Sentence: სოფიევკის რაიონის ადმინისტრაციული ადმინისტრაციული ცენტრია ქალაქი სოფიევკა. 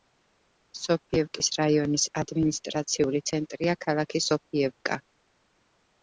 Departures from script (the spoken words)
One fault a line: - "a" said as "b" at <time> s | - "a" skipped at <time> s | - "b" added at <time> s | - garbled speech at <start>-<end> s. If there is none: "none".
- "ადმინისტრაციული" skipped at 3.2 s